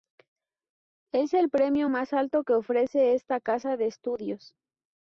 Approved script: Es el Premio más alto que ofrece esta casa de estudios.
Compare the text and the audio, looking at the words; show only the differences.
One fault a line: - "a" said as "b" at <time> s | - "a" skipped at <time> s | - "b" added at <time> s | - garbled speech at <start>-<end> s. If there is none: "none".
none